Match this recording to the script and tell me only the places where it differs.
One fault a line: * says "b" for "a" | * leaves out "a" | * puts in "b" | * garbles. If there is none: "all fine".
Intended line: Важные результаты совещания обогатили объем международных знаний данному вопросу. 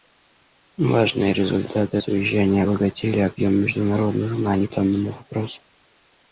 all fine